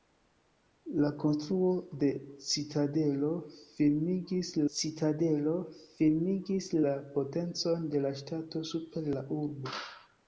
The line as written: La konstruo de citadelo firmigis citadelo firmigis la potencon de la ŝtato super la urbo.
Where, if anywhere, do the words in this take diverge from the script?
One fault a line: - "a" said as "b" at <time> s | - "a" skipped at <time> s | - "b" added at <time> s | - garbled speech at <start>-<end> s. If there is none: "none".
none